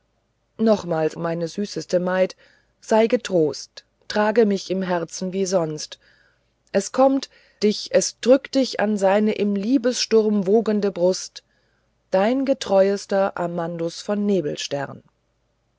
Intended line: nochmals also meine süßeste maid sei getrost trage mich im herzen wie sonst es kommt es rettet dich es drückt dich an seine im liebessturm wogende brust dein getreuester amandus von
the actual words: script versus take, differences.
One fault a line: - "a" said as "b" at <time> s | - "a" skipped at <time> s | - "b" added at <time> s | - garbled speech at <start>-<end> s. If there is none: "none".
- "also" skipped at 1.1 s
- "es rettet" skipped at 7.3 s